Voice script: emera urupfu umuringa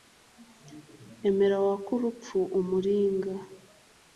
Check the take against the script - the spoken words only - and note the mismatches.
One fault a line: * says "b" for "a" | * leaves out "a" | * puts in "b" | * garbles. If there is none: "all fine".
* puts in "wake"